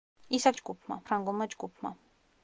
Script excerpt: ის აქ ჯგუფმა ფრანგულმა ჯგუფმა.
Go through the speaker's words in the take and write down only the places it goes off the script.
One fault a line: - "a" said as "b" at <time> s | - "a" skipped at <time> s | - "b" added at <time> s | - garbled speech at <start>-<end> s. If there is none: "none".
none